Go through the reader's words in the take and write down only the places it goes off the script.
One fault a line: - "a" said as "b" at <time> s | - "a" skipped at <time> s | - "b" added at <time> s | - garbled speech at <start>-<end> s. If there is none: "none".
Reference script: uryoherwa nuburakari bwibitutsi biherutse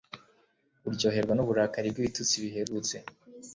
none